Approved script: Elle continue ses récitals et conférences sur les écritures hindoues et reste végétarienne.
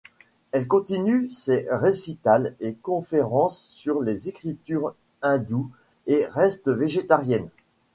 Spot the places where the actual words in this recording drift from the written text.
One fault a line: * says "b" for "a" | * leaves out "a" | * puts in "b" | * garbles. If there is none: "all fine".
all fine